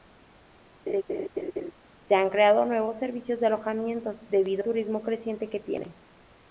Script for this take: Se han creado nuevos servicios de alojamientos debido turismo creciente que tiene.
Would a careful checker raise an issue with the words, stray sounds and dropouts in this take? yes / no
yes